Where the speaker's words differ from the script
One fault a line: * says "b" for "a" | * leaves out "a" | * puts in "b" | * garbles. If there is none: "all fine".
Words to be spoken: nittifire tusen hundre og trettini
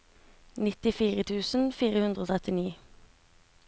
* puts in "fire"